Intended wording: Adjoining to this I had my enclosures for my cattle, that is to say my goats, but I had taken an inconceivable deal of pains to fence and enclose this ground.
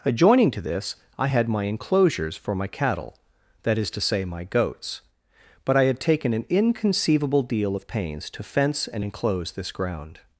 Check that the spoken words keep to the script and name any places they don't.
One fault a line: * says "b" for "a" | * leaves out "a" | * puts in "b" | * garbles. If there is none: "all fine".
all fine